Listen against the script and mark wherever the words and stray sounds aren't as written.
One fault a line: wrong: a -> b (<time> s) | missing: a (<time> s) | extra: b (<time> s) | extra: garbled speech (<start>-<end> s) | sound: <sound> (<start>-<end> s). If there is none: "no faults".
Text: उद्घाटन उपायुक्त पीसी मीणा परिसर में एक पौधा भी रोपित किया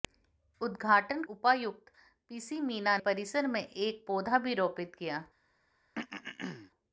sound: throat clearing (5.9-6.7 s)